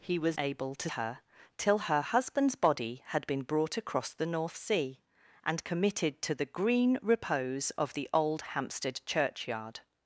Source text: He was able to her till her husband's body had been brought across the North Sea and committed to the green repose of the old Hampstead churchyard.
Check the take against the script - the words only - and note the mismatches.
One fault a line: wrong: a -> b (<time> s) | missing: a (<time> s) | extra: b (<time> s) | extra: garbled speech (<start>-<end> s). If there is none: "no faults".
no faults